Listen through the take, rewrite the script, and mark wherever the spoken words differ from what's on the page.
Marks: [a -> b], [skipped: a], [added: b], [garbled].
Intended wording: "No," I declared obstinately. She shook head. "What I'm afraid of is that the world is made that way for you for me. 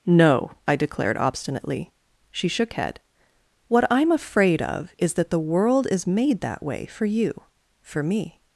"No," I declared obstinately. She shook head. "What I'm afraid of is that the world is made that way for you for me.